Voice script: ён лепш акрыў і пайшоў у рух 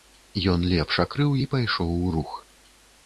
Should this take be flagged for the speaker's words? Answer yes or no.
no